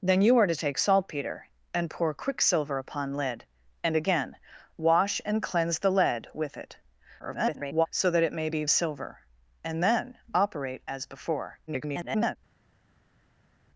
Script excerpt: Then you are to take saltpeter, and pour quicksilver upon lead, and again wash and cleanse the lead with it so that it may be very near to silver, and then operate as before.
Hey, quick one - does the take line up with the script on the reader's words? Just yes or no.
no